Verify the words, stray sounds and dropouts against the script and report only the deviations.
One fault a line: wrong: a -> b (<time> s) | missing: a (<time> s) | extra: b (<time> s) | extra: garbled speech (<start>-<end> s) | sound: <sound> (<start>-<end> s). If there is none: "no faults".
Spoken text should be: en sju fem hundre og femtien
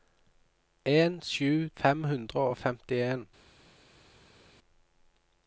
no faults